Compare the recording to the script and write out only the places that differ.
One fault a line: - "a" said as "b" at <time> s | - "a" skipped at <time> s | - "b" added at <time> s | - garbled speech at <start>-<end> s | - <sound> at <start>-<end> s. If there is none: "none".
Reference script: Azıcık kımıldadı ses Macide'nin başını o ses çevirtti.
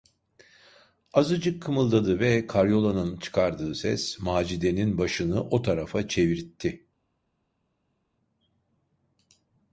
- "ve karyolanın çıkardığı" added at 2.2 s
- "ses" said as "tarafa" at 5.6 s